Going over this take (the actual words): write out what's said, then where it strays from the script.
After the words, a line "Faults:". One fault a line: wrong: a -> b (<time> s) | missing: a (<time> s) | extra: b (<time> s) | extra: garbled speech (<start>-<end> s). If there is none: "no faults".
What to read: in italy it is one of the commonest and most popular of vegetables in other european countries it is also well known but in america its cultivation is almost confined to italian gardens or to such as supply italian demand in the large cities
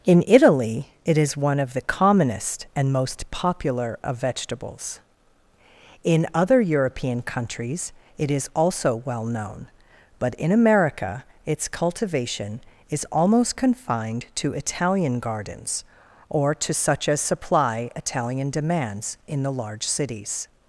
in italy it is one of the commonest and most popular of vegetables in other european countries it is also well known but in america its cultivation is almost confined to italian gardens or to such as supply italian demands in the large cities
Faults:
wrong: demand -> demands (18.5 s)